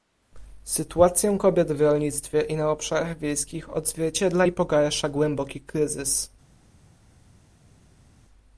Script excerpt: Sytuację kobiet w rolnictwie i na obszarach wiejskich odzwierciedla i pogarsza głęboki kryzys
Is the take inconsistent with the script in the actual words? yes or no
no